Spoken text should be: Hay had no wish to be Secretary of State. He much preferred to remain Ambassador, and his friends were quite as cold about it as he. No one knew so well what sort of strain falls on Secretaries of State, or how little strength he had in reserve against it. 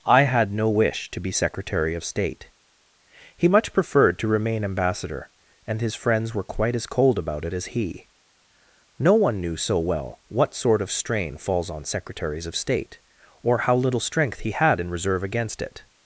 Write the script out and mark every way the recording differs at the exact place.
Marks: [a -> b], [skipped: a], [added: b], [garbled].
[Hay -> I] had no wish to be Secretary of State. He much preferred to remain Ambassador, and his friends were quite as cold about it as he. No one knew so well what sort of strain falls on Secretaries of State, or how little strength he had in reserve against it.